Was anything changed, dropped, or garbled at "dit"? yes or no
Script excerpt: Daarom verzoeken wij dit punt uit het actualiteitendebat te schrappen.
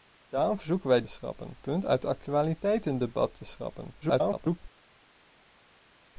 yes